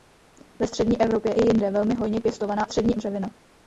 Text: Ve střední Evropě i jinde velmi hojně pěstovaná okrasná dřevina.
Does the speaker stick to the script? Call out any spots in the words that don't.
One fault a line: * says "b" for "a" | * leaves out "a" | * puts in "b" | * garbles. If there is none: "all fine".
* says "střední" for "okrasná"